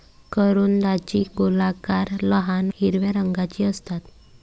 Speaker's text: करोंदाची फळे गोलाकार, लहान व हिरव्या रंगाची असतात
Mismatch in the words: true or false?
true